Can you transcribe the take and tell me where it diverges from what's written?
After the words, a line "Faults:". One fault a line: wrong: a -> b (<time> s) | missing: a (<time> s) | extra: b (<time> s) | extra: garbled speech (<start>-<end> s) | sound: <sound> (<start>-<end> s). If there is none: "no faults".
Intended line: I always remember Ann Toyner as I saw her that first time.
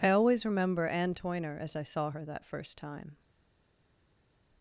I always remember Ann Toyner as I saw her that first time.
Faults:
no faults